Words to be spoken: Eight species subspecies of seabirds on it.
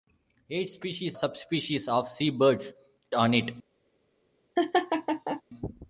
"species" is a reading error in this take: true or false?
false